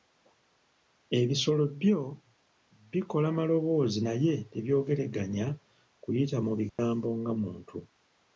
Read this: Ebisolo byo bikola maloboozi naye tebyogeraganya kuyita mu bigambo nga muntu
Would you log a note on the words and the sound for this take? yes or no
yes